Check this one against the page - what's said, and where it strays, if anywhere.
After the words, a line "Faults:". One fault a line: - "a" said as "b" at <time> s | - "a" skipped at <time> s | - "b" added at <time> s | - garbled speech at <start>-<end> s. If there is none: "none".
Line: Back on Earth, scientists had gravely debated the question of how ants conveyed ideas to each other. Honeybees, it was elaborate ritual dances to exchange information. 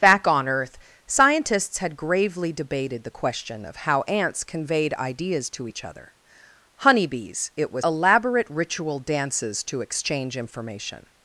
Back on Earth, scientists had gravely debated the question of how ants conveyed ideas to each other. Honeybees, it was elaborate ritual dances to exchange information.
Faults:
none